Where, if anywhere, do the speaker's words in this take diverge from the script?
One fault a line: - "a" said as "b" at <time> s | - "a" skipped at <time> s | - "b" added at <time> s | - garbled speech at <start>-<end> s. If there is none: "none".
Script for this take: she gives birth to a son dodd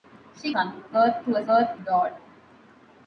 - "gives" said as "son" at 0.5 s
- "son" said as "birth" at 1.5 s